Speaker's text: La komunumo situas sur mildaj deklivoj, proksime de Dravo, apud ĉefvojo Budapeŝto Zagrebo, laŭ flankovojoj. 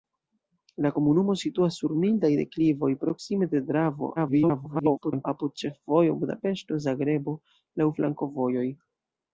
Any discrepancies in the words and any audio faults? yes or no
yes